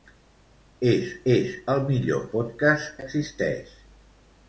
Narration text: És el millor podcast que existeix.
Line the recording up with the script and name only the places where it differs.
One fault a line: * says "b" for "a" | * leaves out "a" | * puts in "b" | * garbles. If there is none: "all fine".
* puts in "és"
* leaves out "que"